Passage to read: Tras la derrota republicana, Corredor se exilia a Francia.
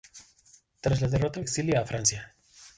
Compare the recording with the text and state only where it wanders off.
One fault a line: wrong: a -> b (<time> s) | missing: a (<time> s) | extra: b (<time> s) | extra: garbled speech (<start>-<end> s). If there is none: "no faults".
missing: republicana Corredor se (1.4 s)